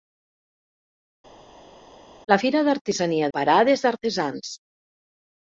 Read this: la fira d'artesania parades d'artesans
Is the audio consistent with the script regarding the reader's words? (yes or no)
yes